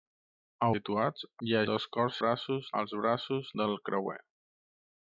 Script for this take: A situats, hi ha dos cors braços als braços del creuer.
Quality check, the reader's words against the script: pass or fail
pass